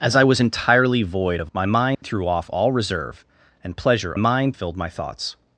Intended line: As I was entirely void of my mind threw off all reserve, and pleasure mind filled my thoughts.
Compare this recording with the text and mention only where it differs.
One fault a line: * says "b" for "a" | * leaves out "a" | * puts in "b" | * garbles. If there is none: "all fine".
all fine